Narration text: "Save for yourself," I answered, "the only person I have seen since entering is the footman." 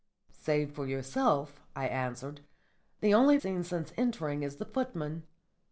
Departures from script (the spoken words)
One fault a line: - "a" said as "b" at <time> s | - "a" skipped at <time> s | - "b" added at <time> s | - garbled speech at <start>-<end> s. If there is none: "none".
- "person I have" skipped at 3.4 s